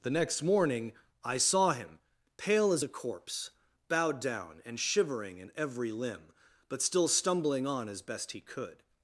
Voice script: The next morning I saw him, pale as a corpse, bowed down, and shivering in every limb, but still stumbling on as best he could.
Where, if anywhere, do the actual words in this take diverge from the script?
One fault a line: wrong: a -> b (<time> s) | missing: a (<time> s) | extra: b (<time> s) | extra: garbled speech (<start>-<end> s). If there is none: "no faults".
no faults